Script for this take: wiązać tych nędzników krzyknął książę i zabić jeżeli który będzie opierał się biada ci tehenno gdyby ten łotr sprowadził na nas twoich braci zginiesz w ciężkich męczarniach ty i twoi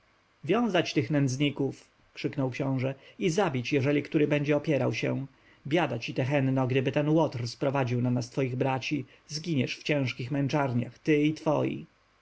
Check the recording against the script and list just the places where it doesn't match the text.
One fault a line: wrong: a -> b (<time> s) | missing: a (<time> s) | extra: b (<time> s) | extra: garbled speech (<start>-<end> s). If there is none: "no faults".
no faults